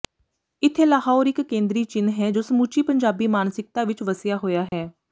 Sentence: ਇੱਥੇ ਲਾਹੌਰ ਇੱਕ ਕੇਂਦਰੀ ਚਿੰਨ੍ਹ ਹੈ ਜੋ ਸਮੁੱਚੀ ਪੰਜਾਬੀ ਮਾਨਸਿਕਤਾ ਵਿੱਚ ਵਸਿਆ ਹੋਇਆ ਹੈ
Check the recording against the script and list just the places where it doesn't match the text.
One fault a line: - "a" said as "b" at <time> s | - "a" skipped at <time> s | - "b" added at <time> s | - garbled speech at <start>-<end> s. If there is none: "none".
none